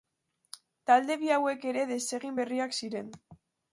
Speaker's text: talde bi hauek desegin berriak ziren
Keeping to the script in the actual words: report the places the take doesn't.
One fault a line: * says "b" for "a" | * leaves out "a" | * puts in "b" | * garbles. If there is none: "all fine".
* puts in "ere"